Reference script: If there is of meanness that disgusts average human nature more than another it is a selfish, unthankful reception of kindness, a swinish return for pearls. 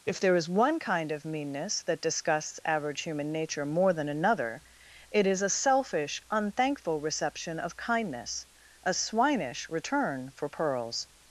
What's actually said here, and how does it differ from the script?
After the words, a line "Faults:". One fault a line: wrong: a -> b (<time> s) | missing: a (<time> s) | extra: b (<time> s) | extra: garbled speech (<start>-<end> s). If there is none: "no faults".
If there is one kind of meanness that disgusts average human nature more than another it is a selfish, unthankful reception of kindness, a swinish return for pearls.
Faults:
extra: one kind (0.5 s)